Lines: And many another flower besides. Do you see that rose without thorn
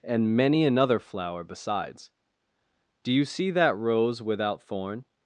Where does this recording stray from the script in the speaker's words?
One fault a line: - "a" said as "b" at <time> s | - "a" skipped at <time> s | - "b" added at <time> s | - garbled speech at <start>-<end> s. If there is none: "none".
none